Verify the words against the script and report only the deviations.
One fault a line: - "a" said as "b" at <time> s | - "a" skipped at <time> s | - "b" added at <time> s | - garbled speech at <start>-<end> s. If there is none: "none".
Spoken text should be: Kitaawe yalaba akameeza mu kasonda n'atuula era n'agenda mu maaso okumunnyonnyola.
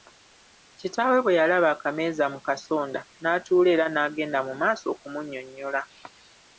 - "bwe" added at 1.2 s